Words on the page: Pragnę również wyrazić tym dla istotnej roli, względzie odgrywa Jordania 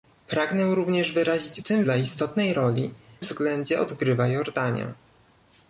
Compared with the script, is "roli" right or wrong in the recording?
right